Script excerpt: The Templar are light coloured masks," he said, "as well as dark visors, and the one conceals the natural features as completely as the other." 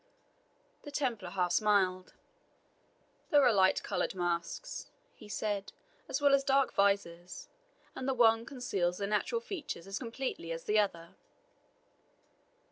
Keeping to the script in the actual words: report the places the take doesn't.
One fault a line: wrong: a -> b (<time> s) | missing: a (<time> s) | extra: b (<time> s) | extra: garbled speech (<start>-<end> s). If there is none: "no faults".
extra: half smiled There (1.3 s)